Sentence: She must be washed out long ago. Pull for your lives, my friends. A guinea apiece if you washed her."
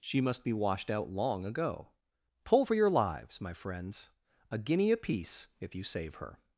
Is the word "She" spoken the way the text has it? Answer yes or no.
yes